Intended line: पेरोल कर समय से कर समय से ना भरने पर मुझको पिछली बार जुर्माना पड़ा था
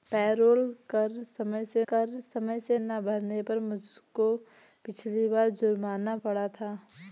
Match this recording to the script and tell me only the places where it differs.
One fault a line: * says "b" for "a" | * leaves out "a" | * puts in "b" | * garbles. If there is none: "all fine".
all fine